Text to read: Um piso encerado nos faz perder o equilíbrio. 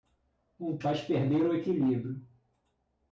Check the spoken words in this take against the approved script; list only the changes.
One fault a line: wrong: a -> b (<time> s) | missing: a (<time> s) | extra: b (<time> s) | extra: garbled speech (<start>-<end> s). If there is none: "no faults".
missing: piso encerado nos (0.8 s)